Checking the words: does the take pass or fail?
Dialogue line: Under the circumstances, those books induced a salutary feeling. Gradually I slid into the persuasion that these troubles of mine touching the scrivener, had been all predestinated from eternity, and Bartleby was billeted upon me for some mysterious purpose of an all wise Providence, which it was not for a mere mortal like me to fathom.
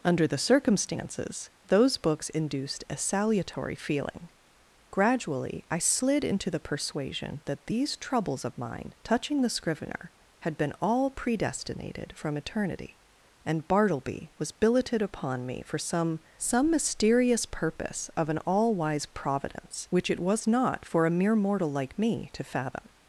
fail